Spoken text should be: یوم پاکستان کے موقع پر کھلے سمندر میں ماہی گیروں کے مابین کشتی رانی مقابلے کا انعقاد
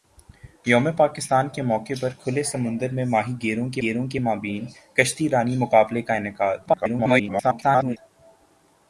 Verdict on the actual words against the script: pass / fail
fail